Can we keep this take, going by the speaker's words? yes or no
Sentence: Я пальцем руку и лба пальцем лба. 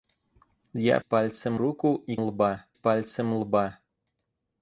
yes